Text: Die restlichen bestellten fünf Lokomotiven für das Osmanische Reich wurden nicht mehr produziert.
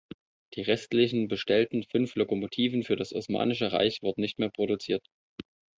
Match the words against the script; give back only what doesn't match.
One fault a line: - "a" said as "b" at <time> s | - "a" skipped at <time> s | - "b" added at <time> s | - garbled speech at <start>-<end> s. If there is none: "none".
none